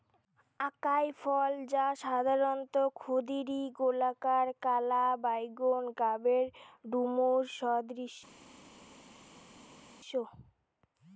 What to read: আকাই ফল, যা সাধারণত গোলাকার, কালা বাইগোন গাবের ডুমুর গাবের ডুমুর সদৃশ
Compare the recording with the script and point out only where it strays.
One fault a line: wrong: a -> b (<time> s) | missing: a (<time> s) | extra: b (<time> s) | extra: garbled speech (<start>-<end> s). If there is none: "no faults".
extra: ক্ষুদিরী (3.0 s)
missing: গাবের ডুমুর (7.4 s)